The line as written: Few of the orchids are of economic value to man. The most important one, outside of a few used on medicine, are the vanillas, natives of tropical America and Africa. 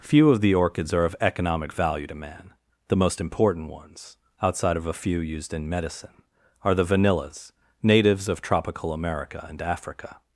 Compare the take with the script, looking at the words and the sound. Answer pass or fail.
fail